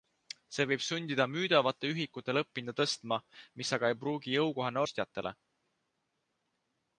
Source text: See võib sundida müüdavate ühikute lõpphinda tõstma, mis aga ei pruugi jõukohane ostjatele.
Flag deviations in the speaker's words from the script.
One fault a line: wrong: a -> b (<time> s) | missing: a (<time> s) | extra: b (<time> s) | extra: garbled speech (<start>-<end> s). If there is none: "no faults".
no faults